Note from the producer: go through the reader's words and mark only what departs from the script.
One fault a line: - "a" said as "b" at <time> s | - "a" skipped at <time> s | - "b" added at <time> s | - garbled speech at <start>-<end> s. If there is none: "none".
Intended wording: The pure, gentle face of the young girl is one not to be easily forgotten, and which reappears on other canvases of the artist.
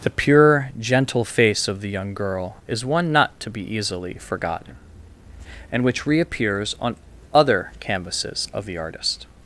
none